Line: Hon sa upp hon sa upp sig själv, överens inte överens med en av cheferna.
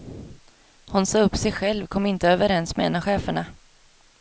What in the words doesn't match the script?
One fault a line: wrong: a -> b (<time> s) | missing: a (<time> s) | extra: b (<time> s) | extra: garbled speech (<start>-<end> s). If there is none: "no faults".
missing: hon sa upp (1.4 s)
wrong: överens -> kom (1.9 s)